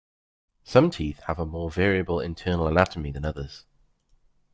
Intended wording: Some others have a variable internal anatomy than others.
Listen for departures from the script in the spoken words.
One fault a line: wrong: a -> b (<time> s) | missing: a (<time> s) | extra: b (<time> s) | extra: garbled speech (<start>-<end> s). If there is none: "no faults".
wrong: others -> teeth (0.9 s)
extra: more (1.5 s)